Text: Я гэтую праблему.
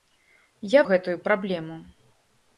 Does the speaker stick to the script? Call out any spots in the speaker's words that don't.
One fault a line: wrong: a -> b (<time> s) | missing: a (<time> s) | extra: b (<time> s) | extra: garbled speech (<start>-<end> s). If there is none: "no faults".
no faults